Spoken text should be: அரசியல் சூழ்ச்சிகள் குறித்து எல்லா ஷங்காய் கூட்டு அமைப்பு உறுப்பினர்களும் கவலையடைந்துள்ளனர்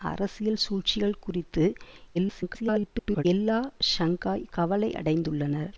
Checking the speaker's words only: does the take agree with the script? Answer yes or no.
no